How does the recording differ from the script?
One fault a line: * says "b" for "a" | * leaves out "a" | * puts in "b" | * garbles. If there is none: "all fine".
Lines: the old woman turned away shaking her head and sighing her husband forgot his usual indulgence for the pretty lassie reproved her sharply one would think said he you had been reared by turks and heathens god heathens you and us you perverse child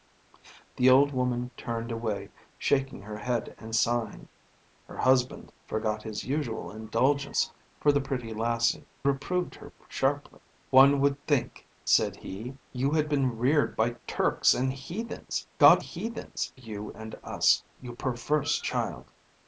all fine